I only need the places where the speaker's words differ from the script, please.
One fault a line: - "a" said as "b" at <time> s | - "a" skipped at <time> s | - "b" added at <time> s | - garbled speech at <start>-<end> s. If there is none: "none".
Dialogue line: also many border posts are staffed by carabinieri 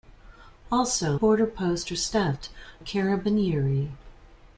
- "many" skipped at 1.2 s
- "by" skipped at 2.5 s